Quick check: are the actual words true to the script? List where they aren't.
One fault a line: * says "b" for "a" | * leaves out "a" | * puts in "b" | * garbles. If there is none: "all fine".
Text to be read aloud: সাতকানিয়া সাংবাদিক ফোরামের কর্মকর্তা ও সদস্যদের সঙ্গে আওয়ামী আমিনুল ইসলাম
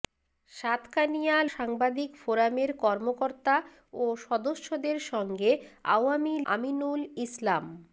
all fine